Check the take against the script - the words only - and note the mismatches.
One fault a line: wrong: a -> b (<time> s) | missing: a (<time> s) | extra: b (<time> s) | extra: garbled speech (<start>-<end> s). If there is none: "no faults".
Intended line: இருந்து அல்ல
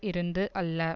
no faults